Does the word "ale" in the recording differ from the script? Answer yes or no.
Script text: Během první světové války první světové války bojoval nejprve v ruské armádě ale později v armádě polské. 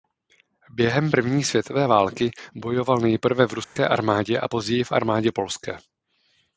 yes